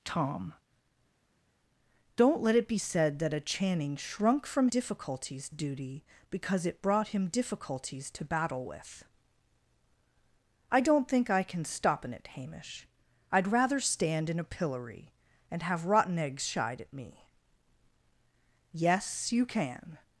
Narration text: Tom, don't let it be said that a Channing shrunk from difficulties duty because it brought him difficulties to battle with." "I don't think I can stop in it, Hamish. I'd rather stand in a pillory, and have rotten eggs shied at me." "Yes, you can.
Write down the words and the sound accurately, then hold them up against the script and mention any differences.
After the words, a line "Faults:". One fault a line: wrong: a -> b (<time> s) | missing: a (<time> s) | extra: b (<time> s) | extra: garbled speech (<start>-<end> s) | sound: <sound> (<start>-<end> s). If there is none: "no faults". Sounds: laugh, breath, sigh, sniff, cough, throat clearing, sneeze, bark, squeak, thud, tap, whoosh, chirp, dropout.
Tom, don't let it be said that a Channing shrunk from difficulties duty because it brought him difficulties to battle with." "I don't think I can stop in it, Hamish. I'd rather stand in a pillory, and have rotten eggs shied at me." "Yes, you can.
Faults:
no faults